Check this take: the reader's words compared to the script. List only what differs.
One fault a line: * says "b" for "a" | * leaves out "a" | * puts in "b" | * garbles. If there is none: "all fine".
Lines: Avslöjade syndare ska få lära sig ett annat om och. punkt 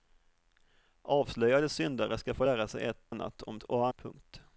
all fine